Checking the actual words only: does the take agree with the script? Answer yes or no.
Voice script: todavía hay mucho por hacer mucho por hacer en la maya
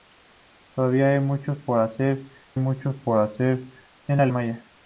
yes